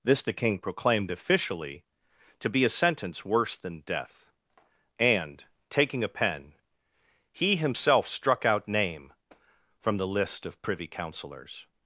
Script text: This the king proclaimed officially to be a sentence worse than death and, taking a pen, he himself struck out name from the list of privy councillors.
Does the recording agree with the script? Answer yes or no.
yes